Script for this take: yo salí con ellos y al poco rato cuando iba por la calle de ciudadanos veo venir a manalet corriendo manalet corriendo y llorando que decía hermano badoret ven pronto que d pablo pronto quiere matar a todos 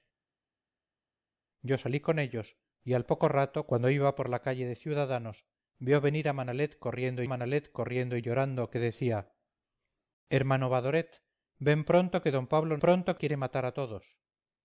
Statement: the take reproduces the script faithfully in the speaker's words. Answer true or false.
true